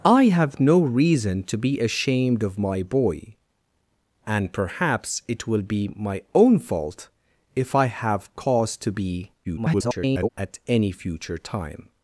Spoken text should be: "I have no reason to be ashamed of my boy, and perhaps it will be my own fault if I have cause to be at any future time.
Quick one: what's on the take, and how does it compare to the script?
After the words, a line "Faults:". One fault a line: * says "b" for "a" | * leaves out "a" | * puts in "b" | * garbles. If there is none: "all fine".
"I have no reason to be ashamed of my boy, and perhaps it will be my own fault if I have cause to be [garbled] at any future time.
Faults:
* garbles